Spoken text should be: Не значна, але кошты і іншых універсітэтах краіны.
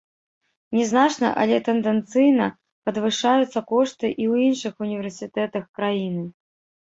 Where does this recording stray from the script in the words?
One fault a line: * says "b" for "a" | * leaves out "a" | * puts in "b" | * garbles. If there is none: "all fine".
* puts in "тэндэнцыйна падвышаюцца"
* puts in "ў"